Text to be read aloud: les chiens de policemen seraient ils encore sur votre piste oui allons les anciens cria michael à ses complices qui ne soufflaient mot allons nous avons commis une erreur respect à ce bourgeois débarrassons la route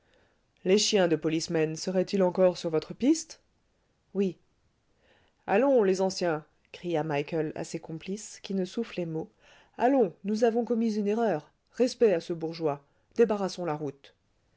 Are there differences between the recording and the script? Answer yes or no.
no